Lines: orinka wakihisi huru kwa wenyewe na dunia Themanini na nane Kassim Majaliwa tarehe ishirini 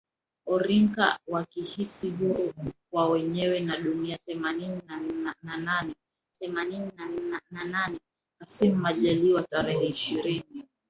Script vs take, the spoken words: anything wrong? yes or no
yes